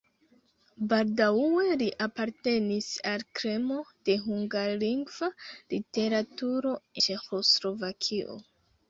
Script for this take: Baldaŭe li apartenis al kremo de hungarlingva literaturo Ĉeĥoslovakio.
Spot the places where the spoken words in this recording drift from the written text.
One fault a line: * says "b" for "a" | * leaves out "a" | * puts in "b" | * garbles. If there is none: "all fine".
all fine